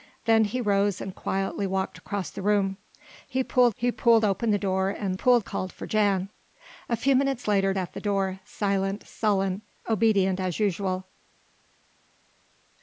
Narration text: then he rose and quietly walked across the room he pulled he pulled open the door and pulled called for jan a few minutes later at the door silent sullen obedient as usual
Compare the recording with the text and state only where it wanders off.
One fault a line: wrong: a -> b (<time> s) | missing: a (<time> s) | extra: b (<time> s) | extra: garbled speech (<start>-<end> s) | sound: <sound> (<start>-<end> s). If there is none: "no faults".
no faults